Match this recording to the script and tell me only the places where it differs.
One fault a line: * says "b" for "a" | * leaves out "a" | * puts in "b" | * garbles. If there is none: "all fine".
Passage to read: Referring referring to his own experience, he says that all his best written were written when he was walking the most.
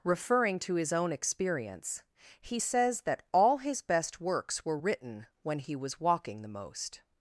* leaves out "referring"
* says "works" for "written"